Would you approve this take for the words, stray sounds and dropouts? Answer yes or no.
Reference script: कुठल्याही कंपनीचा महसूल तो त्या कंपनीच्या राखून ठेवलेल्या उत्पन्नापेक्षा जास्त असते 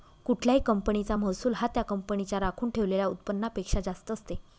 no